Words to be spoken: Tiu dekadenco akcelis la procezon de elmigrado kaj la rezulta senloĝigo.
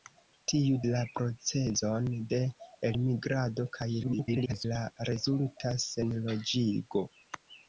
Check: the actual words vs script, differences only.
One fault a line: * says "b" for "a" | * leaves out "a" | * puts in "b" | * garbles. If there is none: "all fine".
* leaves out "dekadenco akcelis"
* garbles